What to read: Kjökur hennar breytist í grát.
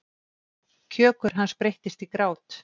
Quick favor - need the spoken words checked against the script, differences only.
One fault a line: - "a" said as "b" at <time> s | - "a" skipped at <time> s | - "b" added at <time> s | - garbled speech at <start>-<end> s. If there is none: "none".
- "hennar" said as "hans" at 1.4 s